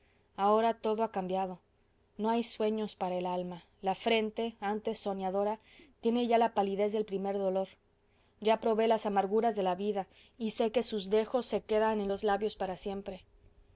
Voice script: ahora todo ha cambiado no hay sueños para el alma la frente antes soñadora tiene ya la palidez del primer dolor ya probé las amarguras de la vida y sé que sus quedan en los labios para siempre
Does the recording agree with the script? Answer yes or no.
no